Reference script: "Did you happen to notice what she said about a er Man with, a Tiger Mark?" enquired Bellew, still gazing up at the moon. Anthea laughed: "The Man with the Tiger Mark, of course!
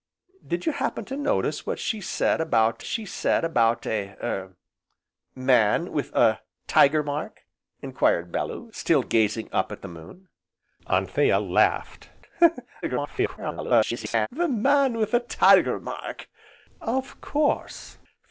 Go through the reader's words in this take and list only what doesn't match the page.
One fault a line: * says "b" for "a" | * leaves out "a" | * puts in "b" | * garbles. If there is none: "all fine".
* puts in "she said about"
* garbles